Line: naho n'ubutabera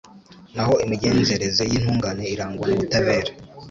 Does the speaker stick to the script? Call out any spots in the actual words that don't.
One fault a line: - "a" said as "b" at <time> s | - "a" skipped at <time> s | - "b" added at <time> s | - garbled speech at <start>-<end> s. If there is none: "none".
- "imigenzereze y'intungane irangwa" added at 0.8 s